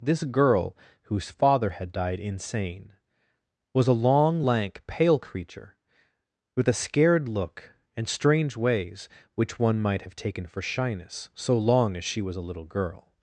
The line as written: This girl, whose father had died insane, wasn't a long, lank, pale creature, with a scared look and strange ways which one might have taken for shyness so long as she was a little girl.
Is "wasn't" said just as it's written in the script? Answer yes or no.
no